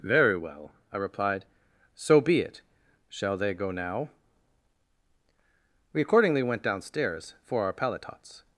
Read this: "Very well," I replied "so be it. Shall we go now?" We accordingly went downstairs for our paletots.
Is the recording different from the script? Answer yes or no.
yes